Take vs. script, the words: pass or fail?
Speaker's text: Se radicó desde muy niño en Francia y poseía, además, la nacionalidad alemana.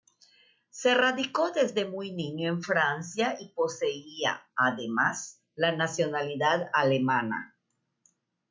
pass